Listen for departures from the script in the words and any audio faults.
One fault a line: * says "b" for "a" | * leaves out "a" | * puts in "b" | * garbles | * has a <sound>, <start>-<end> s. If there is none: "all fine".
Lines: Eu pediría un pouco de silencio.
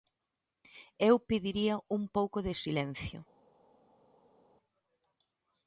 all fine